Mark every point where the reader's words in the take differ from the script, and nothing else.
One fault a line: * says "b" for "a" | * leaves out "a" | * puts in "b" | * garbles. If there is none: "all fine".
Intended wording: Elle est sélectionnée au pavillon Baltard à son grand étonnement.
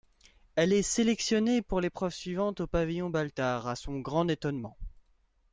* puts in "pour l'épreuve suivante"